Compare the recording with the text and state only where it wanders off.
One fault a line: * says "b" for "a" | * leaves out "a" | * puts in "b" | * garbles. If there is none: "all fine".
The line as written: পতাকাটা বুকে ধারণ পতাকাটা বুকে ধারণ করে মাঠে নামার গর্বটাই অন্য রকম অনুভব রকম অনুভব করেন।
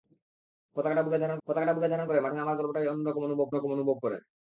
all fine